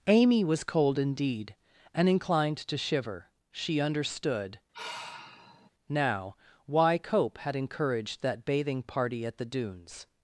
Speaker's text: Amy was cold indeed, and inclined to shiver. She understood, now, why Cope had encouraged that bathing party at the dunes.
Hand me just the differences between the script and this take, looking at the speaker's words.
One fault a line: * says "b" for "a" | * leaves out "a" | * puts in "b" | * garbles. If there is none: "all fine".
all fine